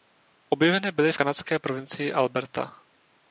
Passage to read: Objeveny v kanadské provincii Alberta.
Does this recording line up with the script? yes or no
no